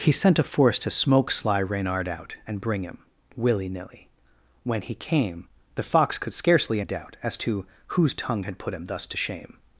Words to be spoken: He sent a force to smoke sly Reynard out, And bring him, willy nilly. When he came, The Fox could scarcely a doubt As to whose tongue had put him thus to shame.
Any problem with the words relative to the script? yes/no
no